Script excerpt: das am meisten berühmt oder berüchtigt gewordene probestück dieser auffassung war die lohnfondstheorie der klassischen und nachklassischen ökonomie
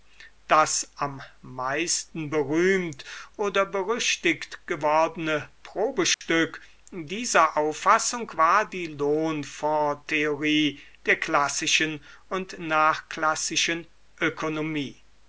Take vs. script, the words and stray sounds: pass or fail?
fail